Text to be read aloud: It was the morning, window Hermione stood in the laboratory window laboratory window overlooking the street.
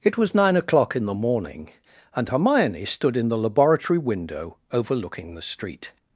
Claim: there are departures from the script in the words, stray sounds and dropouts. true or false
true